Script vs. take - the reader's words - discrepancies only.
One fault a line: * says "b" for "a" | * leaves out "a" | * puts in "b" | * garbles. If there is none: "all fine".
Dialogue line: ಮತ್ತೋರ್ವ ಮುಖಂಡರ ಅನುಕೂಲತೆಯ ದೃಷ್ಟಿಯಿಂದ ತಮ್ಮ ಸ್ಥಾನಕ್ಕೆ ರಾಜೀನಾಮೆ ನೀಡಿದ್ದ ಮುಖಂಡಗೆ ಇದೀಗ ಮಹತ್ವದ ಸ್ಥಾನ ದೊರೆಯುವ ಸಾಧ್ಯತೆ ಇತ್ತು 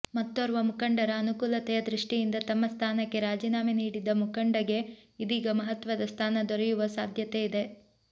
* says "ಇದೆ" for "ಇತ್ತು"